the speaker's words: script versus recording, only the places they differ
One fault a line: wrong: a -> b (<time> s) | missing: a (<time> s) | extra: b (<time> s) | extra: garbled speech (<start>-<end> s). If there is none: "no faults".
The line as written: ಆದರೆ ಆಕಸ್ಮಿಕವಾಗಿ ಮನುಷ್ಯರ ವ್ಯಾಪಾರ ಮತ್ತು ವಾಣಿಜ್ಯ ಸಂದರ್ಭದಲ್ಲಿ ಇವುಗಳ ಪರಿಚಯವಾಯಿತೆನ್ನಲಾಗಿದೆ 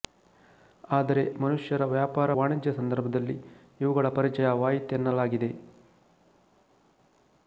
missing: ಆಕಸ್ಮಿಕವಾಗಿ (1.2 s)
missing: ಮತ್ತು (2.3 s)